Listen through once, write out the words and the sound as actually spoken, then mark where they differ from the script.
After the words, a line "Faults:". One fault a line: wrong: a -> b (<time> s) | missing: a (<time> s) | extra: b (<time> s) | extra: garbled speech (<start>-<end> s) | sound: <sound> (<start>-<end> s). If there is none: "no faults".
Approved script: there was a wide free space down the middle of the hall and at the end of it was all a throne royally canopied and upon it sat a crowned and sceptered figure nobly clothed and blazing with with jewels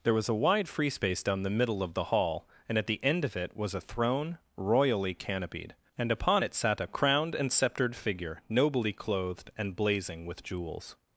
there was a wide free space down the middle of the hall and at the end of it was a throne royally canopied and upon it sat a crowned and sceptered figure nobly clothed and blazing with jewels
Faults:
missing: all (3.8 s)
missing: with (10.4 s)